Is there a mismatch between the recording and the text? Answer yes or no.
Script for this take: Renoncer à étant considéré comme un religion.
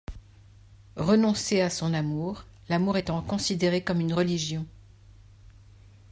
yes